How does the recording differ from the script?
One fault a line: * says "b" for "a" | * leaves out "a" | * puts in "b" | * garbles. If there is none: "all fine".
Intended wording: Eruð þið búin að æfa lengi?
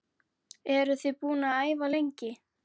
all fine